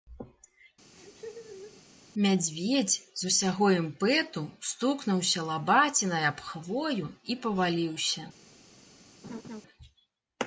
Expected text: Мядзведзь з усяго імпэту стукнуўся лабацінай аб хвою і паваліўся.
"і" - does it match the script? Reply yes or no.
yes